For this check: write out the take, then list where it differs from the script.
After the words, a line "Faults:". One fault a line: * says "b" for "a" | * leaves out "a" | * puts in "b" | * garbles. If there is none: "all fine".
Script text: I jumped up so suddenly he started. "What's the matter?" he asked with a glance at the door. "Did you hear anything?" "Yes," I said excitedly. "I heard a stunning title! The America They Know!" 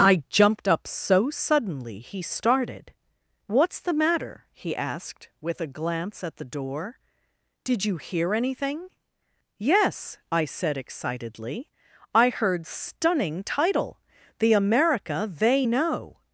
I jumped up so suddenly he started. "What's the matter?" he asked with a glance at the door. "Did you hear anything?" "Yes," I said excitedly. "I heard stunning title! The America They Know!"
Faults:
* leaves out "a"